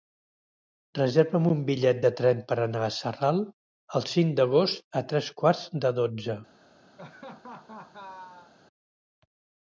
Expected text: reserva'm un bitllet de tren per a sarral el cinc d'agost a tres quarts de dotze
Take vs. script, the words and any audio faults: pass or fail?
fail